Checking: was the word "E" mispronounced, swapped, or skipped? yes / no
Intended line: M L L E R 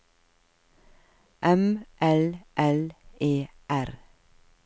no